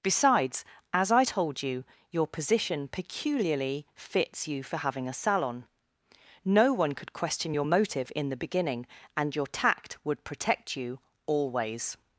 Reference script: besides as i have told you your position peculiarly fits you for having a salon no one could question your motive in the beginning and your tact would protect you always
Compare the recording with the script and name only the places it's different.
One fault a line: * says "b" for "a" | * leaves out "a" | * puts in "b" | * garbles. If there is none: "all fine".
* leaves out "have"